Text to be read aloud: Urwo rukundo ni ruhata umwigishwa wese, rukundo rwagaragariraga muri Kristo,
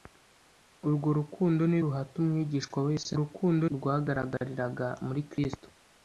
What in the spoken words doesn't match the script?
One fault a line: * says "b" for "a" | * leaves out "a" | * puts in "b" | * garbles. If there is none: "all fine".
all fine